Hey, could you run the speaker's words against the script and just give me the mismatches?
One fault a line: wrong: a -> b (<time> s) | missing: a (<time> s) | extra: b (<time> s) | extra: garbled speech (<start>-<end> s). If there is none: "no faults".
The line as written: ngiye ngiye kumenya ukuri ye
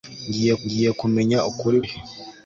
no faults